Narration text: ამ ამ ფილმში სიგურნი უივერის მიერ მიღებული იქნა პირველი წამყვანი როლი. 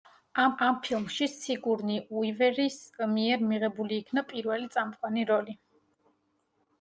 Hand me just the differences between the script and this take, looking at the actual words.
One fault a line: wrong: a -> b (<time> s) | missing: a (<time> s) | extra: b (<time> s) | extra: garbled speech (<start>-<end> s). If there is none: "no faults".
no faults